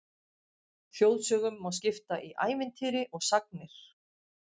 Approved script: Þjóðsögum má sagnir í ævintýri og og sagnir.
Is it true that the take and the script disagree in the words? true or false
true